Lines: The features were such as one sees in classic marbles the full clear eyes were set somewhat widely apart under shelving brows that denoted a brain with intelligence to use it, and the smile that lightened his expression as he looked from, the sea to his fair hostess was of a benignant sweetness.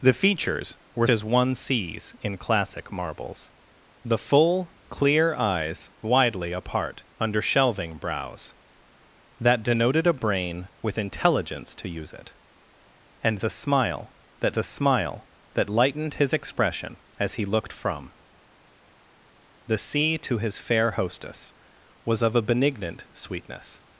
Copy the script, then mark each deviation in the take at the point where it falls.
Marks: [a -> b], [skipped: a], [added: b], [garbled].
The features were [skipped: such] as one sees in classic marbles the full clear eyes [skipped: were set somewhat] widely apart under shelving brows that denoted a brain with intelligence to use it, and the smile that [added: the smile that] lightened his expression as he looked from, the sea to his fair hostess was of a benignant sweetness.